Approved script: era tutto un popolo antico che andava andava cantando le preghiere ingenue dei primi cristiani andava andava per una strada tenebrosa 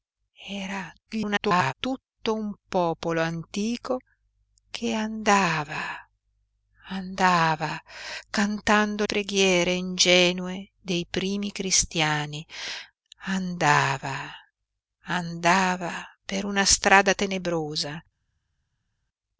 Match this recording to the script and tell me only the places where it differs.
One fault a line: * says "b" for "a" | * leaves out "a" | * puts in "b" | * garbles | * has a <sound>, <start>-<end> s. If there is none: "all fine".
* garbles
* leaves out "le"